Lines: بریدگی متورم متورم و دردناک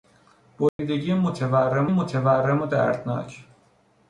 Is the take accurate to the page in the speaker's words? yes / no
yes